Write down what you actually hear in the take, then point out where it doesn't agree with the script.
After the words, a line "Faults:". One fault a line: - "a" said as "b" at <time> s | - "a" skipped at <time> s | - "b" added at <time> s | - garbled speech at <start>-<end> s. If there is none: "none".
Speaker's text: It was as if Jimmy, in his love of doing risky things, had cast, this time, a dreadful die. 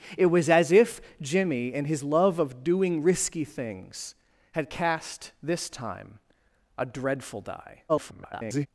It was as if Jimmy, in his love of doing risky things, had cast, this time, a dreadful die. [garbled]
Faults:
- garbled speech at 7.9-8.7 s